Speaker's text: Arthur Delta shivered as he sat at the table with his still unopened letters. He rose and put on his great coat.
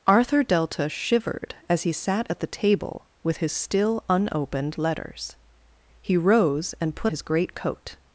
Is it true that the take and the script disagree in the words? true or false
true